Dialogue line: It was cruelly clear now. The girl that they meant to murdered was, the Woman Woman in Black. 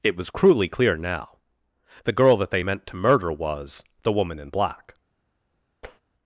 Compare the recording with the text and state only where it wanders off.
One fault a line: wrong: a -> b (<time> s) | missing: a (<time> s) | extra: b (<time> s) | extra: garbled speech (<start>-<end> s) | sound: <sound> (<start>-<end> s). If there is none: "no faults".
wrong: murdered -> murder (2.9 s)
missing: Woman (4.4 s)
sound: tap (5.8-6.0 s)